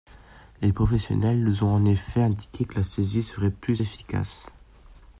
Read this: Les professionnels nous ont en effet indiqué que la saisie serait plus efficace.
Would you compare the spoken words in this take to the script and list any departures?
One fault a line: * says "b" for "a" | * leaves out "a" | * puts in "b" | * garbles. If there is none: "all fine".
all fine